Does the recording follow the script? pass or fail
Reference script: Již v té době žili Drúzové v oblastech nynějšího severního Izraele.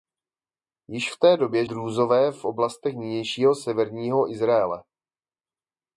fail